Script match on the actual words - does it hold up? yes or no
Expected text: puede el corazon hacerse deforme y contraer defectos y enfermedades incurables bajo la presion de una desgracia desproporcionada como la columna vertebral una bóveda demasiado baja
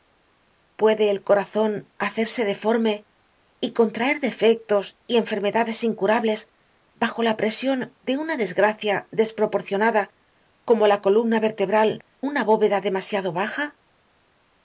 yes